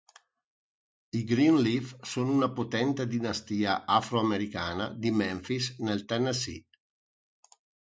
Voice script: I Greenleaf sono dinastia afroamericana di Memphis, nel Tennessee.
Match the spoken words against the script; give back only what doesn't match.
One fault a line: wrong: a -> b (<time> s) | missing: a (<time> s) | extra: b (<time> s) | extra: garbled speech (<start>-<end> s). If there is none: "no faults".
extra: una potente (2.3 s)